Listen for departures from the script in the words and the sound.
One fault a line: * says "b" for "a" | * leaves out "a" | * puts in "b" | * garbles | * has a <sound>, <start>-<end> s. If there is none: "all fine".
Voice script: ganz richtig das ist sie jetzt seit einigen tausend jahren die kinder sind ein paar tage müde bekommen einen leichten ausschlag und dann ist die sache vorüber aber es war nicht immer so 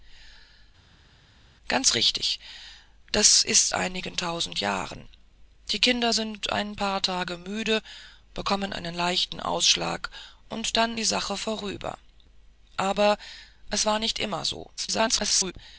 * leaves out "sie jetzt seit"
* leaves out "ist"
* garbles